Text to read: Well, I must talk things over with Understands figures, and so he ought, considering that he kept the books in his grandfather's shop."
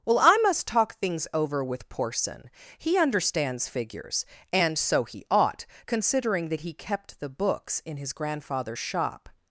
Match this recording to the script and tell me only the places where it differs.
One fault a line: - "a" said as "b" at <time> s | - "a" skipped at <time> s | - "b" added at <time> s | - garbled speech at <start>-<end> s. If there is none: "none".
- "Porson He" added at 1.9 s